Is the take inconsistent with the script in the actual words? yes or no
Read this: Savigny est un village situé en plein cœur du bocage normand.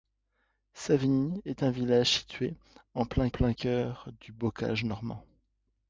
yes